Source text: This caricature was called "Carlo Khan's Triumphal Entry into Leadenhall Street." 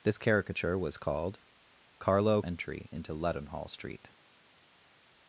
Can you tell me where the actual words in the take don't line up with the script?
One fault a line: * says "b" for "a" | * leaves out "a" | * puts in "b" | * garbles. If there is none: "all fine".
* leaves out "Khan's Triumphal"